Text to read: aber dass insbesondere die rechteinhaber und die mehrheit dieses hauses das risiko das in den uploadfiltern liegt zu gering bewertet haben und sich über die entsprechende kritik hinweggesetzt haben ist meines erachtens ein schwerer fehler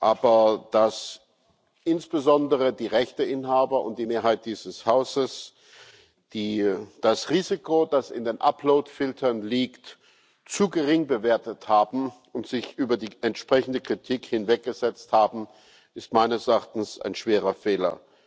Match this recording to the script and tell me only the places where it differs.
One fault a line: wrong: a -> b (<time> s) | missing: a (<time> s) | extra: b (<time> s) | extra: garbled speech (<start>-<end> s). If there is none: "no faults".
no faults